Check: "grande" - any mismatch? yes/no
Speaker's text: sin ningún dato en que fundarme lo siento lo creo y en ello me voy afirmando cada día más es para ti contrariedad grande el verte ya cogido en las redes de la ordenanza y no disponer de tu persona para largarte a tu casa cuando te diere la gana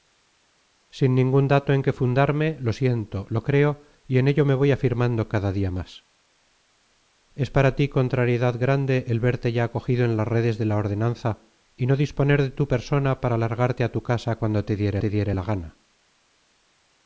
no